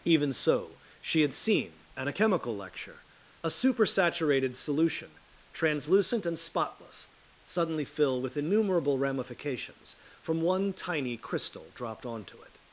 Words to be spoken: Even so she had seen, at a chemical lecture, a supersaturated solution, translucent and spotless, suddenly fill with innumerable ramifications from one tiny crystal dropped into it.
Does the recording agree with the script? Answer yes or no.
no